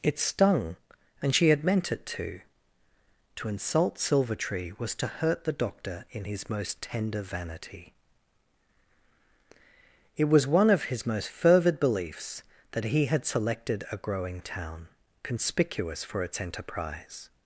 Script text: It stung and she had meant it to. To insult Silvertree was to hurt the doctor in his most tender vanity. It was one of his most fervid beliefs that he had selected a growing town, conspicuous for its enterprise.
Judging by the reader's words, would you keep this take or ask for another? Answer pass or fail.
pass